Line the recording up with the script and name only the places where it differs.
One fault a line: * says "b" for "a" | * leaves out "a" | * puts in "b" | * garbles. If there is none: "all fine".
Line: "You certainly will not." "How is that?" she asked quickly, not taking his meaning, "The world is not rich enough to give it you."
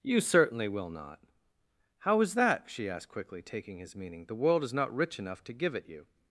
* leaves out "not"